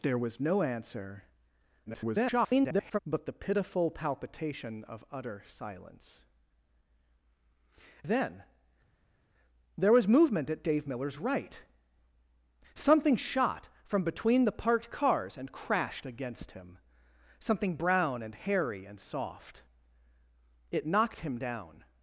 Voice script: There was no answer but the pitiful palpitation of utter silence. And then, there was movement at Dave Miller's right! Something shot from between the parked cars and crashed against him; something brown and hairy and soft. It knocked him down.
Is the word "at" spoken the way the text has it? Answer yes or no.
yes